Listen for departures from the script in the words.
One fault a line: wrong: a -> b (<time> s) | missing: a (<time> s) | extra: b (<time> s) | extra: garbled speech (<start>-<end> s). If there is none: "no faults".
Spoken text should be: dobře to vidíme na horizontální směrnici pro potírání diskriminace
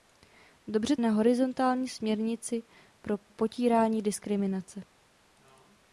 missing: to vidíme (0.9 s)
missing: pro (2.6 s)